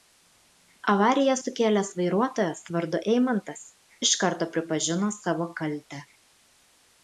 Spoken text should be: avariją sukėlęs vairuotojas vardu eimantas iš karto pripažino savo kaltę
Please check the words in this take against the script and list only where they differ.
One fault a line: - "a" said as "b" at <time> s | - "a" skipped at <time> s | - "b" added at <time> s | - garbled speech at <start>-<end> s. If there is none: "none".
none